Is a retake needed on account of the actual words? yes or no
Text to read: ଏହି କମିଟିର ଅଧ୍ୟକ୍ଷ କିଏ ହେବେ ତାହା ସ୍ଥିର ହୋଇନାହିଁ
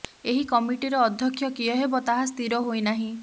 no